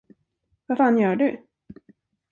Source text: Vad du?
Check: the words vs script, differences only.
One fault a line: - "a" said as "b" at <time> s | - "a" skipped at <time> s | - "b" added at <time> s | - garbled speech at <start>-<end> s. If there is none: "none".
- "fan gör" added at 0.8 s